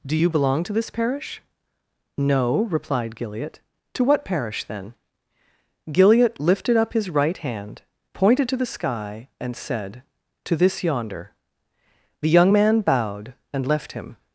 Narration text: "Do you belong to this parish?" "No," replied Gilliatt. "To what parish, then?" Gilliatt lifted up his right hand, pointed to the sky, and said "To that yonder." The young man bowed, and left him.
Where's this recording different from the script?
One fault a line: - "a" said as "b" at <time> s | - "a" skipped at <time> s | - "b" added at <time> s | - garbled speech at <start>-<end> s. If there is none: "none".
- "that" said as "this" at 10.6 s